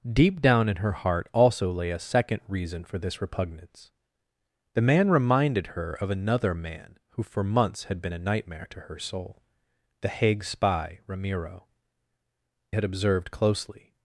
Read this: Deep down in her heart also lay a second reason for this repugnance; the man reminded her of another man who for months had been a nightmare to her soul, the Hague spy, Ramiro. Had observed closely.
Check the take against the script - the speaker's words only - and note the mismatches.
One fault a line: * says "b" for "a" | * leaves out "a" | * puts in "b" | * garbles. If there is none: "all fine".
all fine